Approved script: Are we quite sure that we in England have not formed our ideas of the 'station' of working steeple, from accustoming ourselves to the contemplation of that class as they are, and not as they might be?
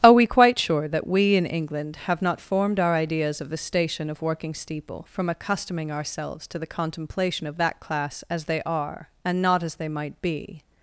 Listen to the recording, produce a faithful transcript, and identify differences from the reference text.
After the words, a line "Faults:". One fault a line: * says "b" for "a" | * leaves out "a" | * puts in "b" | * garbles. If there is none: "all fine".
Are we quite sure that we in England have not formed our ideas of the 'station' of working steeple, from accustoming ourselves to the contemplation of that class as they are, and not as they might be?
Faults:
all fine